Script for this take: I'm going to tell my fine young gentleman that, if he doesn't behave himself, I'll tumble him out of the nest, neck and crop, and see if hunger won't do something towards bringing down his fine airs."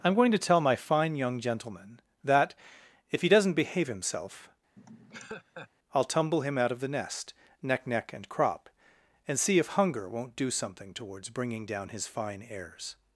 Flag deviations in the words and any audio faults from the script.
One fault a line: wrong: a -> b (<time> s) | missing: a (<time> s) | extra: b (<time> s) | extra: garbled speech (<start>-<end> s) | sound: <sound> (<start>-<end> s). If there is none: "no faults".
sound: laugh (4.8-5.7 s)
extra: neck (7.9 s)